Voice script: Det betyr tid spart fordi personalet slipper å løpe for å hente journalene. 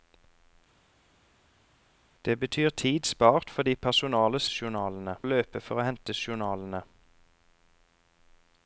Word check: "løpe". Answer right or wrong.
right